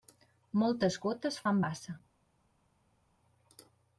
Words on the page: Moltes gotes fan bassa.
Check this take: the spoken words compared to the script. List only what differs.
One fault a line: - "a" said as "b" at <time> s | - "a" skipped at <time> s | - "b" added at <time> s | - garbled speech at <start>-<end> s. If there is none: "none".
none